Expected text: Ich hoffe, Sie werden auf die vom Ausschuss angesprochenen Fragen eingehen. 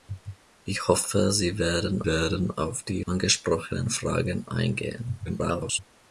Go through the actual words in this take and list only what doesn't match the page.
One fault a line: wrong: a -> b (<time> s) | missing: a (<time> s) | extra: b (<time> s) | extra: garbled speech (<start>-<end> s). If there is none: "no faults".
extra: werden (2.0 s)
missing: vom Ausschuss (3.0 s)
extra: garbled speech (5.2-5.8 s)